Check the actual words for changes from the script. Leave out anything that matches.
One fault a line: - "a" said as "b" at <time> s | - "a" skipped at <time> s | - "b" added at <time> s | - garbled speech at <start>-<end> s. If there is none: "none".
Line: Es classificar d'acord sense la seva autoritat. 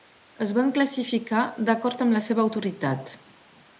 - "van" added at 0.6 s
- "sense" said as "amb" at 2.1 s